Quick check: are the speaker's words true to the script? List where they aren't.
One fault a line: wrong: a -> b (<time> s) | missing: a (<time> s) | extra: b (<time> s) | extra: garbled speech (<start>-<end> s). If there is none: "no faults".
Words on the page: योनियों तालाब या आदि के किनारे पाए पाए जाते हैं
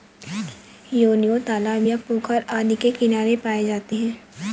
extra: पोखर (2.1 s)
missing: पाए (3.6 s)